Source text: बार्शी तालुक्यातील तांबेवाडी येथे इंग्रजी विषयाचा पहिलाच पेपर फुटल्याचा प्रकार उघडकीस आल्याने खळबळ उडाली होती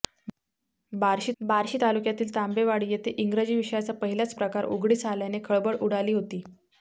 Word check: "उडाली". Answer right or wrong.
right